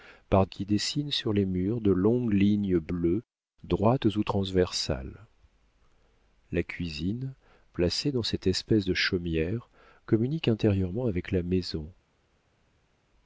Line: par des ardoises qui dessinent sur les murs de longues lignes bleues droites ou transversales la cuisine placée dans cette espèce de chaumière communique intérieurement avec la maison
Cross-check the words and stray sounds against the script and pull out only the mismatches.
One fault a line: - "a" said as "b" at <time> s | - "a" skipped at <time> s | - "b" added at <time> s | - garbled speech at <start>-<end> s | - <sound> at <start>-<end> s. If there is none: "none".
- "des ardoises" skipped at 0.5 s